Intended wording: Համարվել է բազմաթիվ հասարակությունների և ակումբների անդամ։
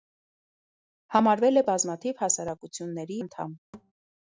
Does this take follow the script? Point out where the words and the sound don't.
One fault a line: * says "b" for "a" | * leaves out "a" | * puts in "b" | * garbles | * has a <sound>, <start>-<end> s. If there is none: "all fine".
* leaves out "և ակումբների"
* has a thud, 3.7-3.9 s